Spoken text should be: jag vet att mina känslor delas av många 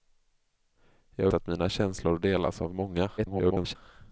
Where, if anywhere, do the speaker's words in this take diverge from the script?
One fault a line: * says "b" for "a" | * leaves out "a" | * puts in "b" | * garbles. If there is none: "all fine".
* leaves out "vet"
* garbles